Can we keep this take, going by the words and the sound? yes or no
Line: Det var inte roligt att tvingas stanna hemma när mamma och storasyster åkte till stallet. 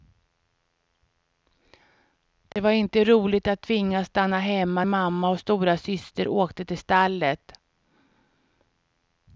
no